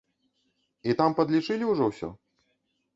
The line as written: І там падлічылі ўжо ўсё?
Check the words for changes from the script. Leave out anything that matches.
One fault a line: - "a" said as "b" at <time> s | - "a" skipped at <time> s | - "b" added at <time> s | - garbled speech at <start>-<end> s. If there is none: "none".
none